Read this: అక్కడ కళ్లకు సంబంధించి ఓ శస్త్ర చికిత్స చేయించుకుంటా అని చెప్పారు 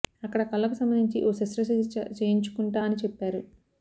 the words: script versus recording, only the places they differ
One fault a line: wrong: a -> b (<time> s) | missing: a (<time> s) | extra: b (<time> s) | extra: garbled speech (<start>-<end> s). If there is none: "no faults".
no faults